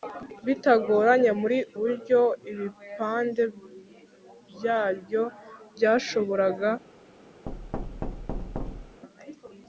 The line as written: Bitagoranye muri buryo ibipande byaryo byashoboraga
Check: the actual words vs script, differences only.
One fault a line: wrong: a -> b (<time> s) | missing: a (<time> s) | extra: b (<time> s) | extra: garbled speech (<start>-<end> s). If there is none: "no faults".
no faults